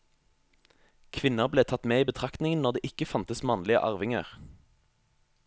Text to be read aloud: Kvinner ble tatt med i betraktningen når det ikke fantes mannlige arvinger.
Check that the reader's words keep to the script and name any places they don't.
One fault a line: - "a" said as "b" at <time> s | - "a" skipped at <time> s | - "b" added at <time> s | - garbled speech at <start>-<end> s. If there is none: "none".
none